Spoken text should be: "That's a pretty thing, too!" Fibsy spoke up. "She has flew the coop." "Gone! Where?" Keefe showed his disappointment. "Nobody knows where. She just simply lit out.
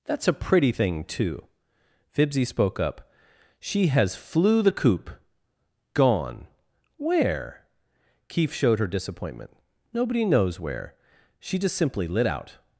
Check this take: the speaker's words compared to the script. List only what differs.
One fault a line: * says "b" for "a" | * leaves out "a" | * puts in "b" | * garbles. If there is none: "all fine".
* says "her" for "his"